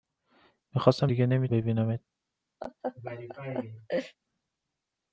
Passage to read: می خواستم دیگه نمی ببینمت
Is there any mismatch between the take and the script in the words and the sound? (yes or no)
yes